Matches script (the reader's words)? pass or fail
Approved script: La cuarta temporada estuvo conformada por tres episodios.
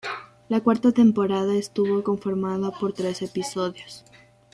pass